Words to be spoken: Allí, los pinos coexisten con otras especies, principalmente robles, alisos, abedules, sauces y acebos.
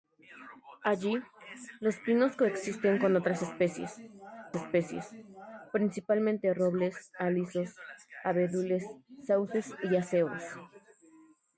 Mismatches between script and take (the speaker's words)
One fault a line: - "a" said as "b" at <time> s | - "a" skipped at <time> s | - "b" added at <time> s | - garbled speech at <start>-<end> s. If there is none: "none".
- "especies" added at 4.6 s